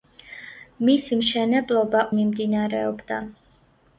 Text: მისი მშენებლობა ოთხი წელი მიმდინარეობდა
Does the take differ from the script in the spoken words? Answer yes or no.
yes